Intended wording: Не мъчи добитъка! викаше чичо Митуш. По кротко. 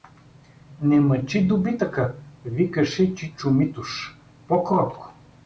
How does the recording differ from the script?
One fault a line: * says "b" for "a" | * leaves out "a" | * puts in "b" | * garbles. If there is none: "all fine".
all fine